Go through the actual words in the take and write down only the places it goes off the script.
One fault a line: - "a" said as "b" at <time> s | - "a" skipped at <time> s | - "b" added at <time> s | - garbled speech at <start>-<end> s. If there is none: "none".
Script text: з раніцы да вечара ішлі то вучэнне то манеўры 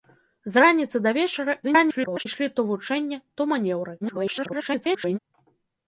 - garbled speech at 1.6-2.2 s
- garbled speech at 4.0-5.2 s